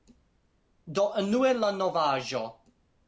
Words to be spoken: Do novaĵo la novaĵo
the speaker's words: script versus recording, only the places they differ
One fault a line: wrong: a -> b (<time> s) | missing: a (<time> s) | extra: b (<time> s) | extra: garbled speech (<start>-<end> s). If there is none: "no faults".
wrong: novaĵo -> unue (1.2 s)